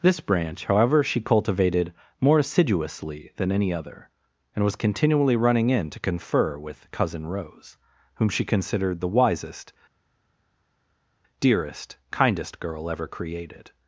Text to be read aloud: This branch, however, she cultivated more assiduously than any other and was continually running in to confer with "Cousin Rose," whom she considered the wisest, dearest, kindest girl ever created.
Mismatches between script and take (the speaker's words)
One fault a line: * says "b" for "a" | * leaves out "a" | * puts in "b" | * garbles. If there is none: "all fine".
all fine